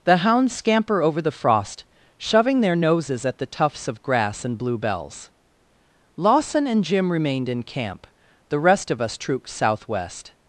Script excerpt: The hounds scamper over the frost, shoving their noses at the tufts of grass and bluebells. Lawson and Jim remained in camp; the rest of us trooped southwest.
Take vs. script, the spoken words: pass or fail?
pass